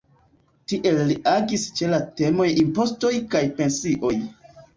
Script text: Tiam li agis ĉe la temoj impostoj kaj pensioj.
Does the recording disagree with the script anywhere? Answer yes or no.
yes